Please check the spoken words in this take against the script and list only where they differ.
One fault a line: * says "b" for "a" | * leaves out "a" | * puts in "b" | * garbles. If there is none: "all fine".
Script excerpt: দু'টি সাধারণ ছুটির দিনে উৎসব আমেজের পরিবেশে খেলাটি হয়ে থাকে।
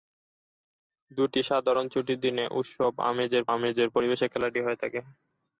* puts in "আমেজের"